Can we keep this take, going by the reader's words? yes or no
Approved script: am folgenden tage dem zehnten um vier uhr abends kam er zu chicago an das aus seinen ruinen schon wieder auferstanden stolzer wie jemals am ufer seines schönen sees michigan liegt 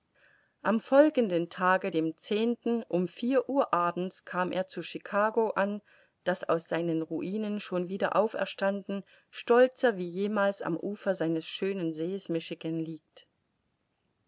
yes